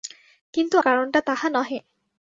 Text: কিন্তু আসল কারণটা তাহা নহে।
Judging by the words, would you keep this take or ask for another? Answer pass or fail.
fail